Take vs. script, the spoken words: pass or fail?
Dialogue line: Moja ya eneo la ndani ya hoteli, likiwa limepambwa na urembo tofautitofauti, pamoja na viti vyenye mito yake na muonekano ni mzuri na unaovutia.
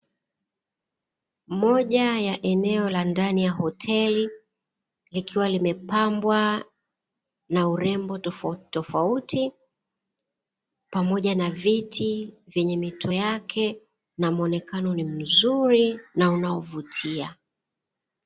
pass